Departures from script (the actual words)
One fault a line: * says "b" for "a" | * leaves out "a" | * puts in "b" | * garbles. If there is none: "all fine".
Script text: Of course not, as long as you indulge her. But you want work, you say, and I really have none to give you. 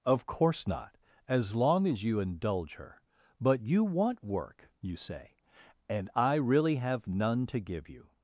all fine